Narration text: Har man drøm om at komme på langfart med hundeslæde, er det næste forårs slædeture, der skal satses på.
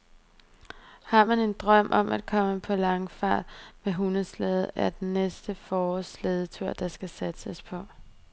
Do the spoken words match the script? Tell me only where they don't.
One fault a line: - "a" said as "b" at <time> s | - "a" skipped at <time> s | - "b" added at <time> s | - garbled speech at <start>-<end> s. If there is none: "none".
- "en" added at 1.4 s